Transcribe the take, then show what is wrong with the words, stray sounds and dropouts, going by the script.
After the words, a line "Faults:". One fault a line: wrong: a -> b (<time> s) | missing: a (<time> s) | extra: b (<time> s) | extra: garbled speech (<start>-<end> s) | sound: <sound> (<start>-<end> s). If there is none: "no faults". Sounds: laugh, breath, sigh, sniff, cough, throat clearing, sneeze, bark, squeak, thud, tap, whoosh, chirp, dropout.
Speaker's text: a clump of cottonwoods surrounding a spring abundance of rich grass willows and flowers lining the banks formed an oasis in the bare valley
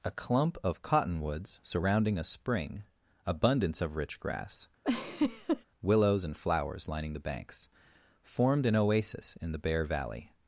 a clump of cottonwoods surrounding a spring abundance of rich grass willows and flowers lining the banks formed an oasis in the bare valley
Faults:
sound: laugh (4.8-5.6 s)